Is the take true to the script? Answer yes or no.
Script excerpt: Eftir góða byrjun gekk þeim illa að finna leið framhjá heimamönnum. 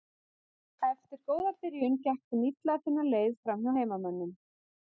yes